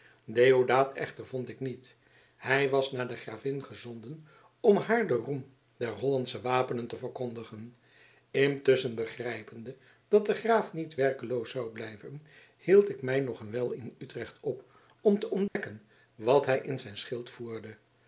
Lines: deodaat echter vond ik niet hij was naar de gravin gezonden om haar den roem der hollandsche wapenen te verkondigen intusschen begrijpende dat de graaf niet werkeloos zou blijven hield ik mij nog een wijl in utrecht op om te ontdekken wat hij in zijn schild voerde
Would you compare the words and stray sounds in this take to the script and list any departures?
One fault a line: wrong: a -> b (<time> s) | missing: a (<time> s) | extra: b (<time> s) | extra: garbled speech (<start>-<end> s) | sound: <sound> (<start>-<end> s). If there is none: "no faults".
sound: dropout (15.5-15.6 s)